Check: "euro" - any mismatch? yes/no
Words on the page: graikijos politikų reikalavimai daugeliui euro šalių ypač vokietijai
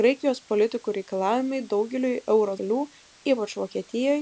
no